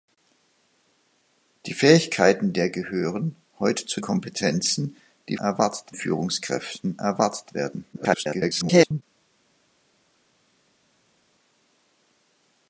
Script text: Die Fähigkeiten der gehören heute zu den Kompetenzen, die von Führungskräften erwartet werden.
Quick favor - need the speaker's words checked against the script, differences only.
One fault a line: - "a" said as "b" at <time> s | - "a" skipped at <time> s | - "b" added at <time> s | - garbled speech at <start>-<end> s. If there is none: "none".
- "den" skipped at 4.0 s
- "von" said as "erwartet" at 5.4 s
- garbled speech at 7.9-9.0 s